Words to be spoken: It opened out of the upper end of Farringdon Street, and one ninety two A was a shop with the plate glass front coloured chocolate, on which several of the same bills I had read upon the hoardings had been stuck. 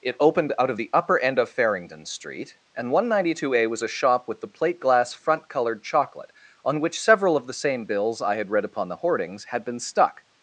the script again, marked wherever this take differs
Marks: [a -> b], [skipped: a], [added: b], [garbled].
It opened out of the upper end of Farringdon Street, and one ninety two A was a shop with the plate glass front coloured chocolate, on which several of the same bills I had read upon the hoardings had been stuck.